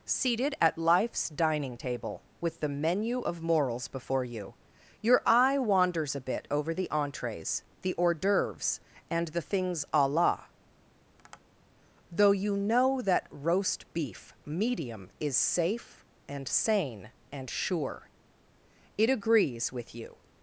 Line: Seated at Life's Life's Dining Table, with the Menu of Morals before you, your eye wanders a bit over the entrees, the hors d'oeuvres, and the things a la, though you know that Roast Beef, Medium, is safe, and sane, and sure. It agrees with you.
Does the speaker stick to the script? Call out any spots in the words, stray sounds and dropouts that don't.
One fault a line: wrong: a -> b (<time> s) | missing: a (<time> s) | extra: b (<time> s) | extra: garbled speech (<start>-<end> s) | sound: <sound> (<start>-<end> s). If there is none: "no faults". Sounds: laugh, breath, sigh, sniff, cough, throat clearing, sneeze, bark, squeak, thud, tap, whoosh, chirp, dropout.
missing: Life's (1.3 s)
sound: tap (11.2-11.4 s)